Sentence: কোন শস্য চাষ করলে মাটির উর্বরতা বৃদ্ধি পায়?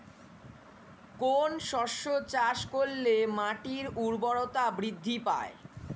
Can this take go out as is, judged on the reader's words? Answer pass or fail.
pass